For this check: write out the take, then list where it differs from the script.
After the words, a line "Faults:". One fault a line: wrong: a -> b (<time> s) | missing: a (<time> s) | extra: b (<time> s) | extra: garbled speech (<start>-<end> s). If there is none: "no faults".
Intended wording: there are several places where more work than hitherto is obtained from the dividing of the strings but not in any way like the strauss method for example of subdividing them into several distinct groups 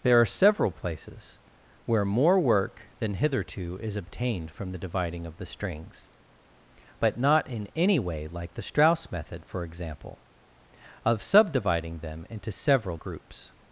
there are several places where more work than hitherto is obtained from the dividing of the strings but not in any way like the strauss method for example of subdividing them into several groups
Faults:
missing: distinct (13.0 s)